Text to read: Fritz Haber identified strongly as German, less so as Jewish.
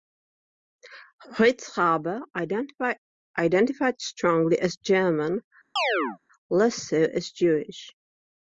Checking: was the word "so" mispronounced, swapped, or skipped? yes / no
no